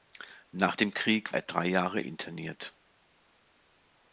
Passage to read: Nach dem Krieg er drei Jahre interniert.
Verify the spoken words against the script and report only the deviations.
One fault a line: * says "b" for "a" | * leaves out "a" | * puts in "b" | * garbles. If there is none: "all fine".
all fine